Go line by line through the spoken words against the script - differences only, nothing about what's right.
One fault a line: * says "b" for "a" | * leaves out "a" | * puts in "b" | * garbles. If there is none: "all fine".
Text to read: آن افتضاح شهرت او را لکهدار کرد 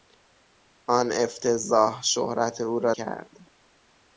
* leaves out "لکهدار"